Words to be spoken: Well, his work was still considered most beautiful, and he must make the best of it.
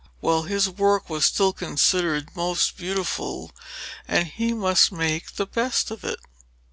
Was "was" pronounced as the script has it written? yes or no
yes